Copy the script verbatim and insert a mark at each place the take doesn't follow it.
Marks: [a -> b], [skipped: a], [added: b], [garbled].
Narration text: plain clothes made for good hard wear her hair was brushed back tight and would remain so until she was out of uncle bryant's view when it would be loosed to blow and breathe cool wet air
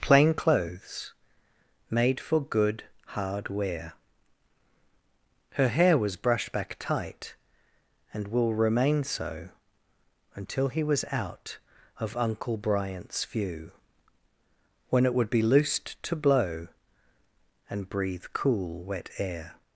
plain clothes made for good hard wear her hair was brushed back tight and [would -> will] remain so until [she -> he] was out of uncle bryant's view when it would be loosed to blow and breathe cool wet air